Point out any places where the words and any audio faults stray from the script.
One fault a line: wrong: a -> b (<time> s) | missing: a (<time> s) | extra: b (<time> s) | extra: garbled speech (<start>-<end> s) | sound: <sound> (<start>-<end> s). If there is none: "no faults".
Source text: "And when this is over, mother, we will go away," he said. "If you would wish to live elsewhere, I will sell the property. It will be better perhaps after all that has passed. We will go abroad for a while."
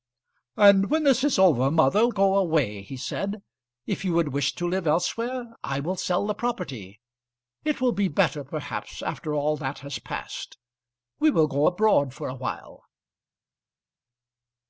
missing: we will (2.1 s)